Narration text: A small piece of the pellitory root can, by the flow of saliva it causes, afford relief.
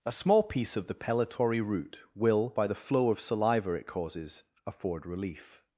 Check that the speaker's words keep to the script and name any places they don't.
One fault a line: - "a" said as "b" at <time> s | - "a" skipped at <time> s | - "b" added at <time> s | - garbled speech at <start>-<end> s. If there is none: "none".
- "can" said as "will" at 2.1 s